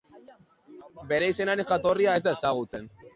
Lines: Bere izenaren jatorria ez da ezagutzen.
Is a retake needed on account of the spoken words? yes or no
no